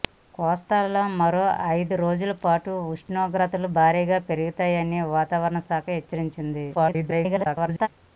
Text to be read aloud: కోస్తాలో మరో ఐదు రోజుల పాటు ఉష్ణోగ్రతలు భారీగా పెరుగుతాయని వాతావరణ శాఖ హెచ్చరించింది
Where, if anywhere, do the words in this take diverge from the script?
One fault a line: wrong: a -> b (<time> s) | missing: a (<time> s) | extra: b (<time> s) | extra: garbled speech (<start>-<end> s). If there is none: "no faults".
extra: garbled speech (6.7-7.9 s)